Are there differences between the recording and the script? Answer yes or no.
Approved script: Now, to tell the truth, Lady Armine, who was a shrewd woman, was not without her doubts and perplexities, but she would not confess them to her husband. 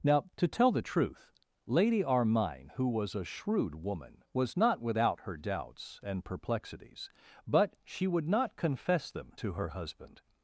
no